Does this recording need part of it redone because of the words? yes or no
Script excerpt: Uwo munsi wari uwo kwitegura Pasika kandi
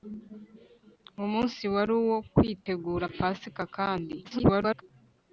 yes